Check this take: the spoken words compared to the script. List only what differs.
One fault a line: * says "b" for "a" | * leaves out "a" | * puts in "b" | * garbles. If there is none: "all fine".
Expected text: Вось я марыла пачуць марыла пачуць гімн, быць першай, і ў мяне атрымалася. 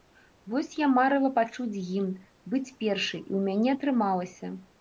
* leaves out "марыла пачуць"